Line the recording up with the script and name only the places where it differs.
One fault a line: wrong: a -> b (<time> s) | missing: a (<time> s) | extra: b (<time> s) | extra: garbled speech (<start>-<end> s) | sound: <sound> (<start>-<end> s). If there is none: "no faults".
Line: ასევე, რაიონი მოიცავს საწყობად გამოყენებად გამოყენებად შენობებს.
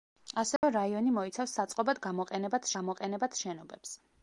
sound: dropout (0.6-0.6 s)